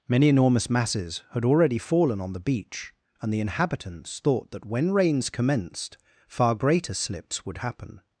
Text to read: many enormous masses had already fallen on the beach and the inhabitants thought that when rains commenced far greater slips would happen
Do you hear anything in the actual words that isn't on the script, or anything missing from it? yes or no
no